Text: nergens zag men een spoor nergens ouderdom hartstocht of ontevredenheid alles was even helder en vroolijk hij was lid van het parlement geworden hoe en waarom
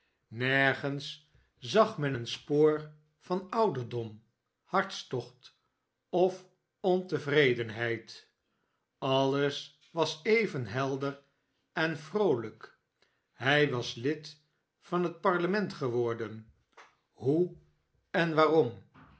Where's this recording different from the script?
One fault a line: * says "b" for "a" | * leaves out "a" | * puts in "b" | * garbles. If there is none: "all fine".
* says "van" for "nergens"